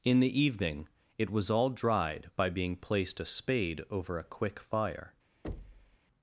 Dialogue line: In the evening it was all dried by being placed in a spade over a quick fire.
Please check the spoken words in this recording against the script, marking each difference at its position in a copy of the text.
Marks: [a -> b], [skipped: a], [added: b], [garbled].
In the evening it was all dried by being placed [skipped: in] a spade over a quick fire.